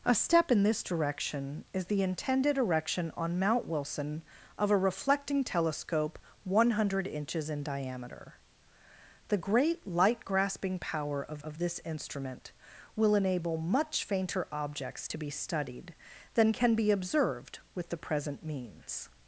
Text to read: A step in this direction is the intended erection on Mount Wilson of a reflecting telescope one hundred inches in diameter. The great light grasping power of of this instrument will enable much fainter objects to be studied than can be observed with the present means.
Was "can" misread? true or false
false